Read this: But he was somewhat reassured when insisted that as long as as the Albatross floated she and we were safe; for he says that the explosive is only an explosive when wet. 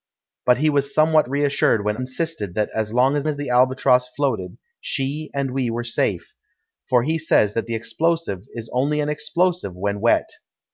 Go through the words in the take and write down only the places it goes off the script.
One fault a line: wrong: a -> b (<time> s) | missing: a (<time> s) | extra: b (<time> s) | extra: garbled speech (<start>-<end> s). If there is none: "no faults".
no faults